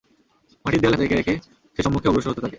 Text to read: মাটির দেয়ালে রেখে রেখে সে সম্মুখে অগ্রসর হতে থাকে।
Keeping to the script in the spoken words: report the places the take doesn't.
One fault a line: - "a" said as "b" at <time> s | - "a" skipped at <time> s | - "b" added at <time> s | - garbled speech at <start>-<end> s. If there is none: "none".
none